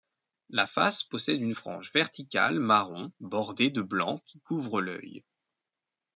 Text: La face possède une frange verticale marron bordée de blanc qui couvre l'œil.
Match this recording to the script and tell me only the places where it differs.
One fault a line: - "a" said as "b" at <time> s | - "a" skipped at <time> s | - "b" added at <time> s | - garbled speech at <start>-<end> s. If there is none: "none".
none